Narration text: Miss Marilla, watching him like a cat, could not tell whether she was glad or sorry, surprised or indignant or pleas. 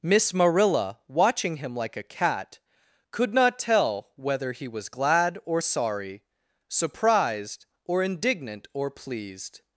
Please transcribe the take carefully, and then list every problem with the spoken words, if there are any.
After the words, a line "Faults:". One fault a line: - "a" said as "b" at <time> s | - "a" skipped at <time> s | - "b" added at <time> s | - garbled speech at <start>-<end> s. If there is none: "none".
Miss Marilla, watching him like a cat, could not tell whether he was glad or sorry, surprised or indignant or pleased.
Faults:
- "she" said as "he" at 4.5 s
- "pleas" said as "pleased" at 8.9 s